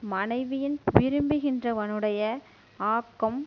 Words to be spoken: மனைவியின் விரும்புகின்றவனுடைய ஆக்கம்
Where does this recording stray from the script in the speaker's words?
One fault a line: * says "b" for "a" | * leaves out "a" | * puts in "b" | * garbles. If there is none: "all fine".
all fine